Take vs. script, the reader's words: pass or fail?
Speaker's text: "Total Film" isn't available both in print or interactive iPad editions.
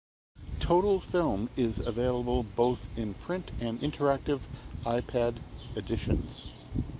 fail